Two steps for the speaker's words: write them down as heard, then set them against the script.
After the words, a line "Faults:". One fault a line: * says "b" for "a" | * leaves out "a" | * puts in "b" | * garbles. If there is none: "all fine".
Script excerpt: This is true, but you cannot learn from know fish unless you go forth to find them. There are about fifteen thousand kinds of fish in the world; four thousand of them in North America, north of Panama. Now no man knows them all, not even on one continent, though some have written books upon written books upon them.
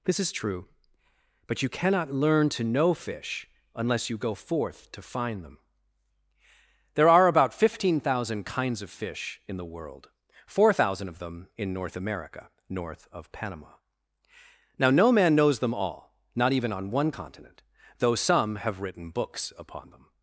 This is true, but you cannot learn to know fish unless you go forth to find them. There are about fifteen thousand kinds of fish in the world; four thousand of them in North America, north of Panama. Now no man knows them all, not even on one continent, though some have written books upon them.
Faults:
* says "to" for "from"
* leaves out "written books upon"